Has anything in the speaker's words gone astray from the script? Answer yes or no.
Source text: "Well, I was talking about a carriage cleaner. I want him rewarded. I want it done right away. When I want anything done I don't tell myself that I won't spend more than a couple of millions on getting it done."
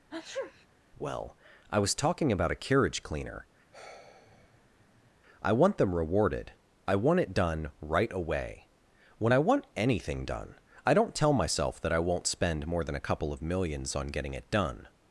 yes